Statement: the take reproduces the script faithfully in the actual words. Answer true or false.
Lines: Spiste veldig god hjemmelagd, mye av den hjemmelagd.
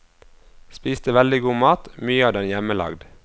false